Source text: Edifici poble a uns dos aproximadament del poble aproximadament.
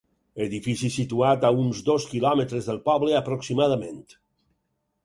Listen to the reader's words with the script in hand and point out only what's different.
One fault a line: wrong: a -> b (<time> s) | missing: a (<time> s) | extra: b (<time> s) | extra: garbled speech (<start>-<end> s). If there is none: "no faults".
wrong: poble -> situat (0.9 s)
wrong: aproximadament -> quilòmetres (2.1 s)